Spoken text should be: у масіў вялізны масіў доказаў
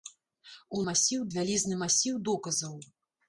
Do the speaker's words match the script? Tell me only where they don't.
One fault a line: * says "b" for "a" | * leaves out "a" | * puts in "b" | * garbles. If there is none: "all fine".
all fine